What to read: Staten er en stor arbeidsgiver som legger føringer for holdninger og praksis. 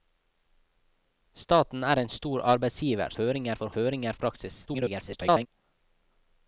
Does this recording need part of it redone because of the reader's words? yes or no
yes